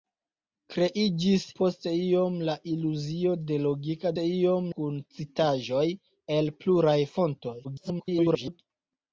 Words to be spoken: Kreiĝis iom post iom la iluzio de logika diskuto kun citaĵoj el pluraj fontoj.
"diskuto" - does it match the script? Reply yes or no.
no